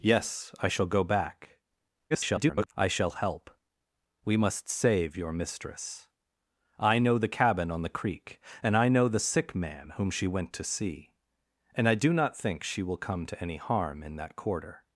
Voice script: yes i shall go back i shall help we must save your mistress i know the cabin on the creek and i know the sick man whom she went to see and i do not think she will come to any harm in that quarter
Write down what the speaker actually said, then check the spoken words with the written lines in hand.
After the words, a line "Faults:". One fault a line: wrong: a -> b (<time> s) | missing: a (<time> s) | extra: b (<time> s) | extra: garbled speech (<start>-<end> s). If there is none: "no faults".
yes i shall go back [garbled] i shall help we must save your mistress i know the cabin on the creek and i know the sick man whom she went to see and i do not think she will come to any harm in that quarter
Faults:
extra: garbled speech (2.1-2.7 s)